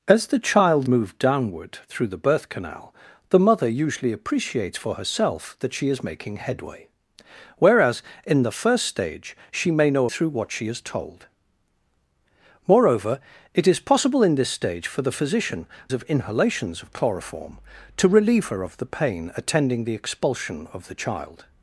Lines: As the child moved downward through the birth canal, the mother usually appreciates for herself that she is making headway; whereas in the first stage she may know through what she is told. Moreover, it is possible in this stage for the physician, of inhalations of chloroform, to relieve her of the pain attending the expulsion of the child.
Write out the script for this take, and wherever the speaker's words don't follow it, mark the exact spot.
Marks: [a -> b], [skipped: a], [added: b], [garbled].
As the child moved downward through the birth canal, the mother usually appreciates for herself that she is making headway; whereas in the first stage she may know through what she is told. Moreover, it is possible in this stage for the physician, of inhalations of chloroform, to relieve her of the pain attending the expulsion of the child.